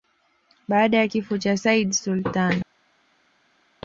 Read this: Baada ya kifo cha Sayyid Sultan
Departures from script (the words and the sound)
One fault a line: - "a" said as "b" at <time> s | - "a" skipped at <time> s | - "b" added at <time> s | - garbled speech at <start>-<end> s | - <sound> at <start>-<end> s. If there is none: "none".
none